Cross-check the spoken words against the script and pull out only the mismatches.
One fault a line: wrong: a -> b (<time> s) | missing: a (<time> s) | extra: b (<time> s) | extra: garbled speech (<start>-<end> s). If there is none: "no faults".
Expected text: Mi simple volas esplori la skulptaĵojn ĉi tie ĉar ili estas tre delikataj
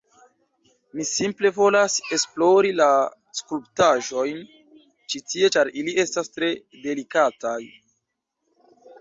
no faults